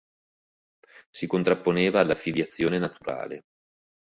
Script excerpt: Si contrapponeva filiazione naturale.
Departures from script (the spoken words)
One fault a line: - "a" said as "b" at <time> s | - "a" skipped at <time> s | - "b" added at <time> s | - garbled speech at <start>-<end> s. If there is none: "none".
- "alla" added at 2.0 s